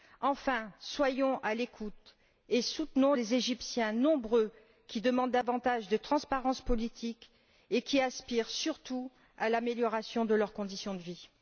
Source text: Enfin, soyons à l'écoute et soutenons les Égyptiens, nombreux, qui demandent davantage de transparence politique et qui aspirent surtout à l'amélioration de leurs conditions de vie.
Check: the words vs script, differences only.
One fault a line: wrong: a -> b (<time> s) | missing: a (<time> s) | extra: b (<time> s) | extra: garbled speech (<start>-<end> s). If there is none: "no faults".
no faults